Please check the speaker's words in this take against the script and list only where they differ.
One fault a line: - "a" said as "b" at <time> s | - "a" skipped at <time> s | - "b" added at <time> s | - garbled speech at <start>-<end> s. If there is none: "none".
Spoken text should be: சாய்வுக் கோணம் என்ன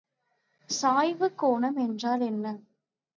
- "என்றால்" added at 1.8 s